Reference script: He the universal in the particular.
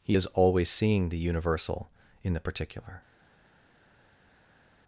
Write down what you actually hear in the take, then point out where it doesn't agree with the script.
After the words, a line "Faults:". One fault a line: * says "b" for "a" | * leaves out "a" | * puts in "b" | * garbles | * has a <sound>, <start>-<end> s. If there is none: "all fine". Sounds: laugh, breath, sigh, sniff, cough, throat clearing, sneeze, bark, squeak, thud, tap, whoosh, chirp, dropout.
He is always seeing the universal in the particular.
Faults:
* puts in "is always seeing"